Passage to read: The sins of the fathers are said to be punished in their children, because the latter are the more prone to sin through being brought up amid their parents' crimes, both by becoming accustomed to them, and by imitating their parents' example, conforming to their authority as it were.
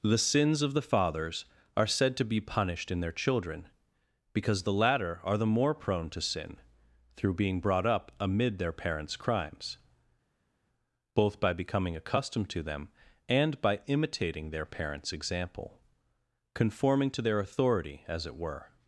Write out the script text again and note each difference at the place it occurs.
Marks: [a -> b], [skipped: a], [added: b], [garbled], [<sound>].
The sins of the fathers are said to be punished in their children, because the latter are the more prone to sin through being brought up amid their parents' crimes, both by becoming accustomed to them, and by imitating their parents' example, conforming to their authority as it were.